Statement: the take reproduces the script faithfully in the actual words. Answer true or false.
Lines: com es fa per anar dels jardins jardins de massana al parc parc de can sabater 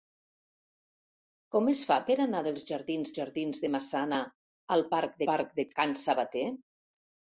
true